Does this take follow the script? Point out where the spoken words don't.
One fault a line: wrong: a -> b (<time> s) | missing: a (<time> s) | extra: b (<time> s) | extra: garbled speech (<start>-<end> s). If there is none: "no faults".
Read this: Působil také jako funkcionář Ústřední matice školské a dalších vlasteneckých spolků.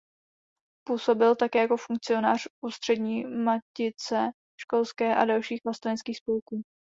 no faults